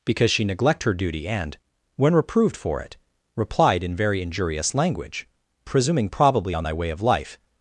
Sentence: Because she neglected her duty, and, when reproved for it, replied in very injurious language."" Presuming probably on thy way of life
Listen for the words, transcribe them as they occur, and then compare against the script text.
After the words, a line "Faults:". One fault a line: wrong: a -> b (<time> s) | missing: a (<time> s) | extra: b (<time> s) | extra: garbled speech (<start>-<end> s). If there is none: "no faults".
Because she neglect her duty, and, when reproved for it, replied in very injurious language."" Presuming probably on thy way of life
Faults:
wrong: neglected -> neglect (0.4 s)